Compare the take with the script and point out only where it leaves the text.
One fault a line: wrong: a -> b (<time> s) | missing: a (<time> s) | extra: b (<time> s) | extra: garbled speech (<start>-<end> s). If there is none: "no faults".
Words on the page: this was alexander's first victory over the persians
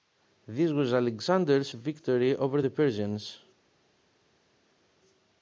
missing: first (1.7 s)